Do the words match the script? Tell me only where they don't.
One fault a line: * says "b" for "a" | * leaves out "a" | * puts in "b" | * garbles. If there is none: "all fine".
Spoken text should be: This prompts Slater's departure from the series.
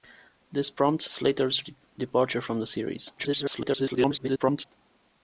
* garbles